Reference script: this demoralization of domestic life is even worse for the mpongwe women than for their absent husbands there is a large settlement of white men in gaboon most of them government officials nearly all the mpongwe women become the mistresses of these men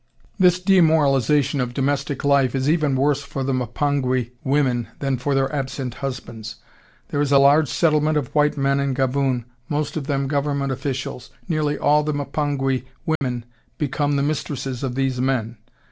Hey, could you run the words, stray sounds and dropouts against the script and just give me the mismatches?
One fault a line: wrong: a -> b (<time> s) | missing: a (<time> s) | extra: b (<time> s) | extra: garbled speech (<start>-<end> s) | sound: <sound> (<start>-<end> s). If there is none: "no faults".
sound: dropout (13.2-13.2 s)